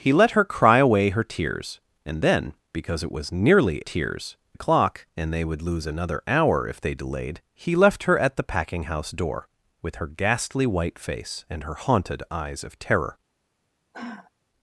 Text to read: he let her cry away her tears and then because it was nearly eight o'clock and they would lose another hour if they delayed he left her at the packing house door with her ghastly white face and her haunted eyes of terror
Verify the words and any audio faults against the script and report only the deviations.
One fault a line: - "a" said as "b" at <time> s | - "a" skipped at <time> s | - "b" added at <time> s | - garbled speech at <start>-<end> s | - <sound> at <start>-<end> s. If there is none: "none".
- "eight" said as "tears" at 3.8 s
- sigh at 13.9-14.3 s